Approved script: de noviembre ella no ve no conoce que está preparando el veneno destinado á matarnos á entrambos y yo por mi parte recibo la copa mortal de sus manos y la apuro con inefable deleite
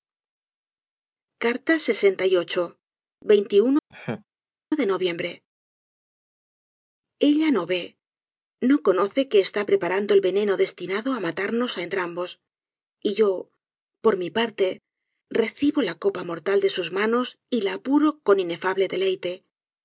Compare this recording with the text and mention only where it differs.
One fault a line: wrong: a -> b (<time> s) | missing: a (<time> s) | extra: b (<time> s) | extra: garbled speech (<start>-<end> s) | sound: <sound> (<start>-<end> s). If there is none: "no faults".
sound: laugh (3.9-4.2 s)